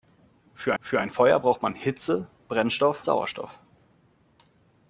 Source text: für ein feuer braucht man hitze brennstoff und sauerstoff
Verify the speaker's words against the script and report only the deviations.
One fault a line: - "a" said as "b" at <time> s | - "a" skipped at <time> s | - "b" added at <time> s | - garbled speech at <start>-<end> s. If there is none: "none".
- "für" added at 0.8 s
- "und" skipped at 3.1 s